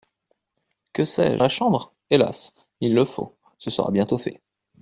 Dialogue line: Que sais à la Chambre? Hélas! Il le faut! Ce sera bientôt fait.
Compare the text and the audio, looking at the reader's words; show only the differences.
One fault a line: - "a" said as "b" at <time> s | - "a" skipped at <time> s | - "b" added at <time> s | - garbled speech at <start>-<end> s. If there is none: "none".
none